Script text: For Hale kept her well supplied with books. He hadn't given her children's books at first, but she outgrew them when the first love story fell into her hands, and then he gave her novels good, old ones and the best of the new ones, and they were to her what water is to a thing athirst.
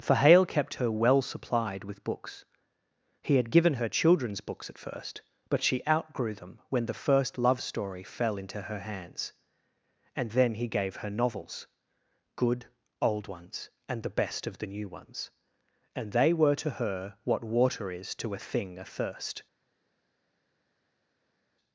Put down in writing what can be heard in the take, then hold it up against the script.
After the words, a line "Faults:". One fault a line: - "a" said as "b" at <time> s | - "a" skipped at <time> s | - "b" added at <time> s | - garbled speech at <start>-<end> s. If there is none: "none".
For Hale kept her well supplied with books. He had given her children's books at first, but she outgrew them when the first love story fell into her hands, and then he gave her novels good, old ones and the best of the new ones, and they were to her what water is to a thing athirst.
Faults:
- "hadn't" said as "had" at 3.4 s